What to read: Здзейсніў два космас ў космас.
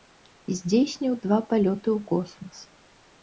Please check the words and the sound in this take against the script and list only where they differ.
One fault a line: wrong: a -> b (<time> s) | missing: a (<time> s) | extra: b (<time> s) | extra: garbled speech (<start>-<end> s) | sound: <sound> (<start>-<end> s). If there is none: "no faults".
wrong: космас -> палёты (1.5 s)